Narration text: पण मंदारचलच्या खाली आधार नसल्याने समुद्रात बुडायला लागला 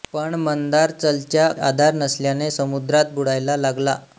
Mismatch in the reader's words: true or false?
true